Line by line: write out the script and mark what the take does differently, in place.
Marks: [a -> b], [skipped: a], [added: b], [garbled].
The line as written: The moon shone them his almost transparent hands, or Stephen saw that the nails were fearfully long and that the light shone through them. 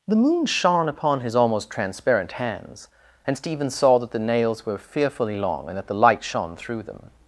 The moon shone [them -> upon] his almost transparent hands, [or -> and] Stephen saw that the nails were fearfully long and that the light shone through them.